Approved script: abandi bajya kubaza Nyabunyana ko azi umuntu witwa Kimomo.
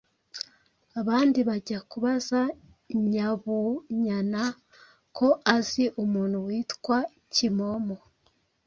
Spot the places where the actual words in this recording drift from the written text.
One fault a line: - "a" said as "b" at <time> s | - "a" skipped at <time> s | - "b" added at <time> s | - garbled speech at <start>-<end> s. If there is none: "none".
none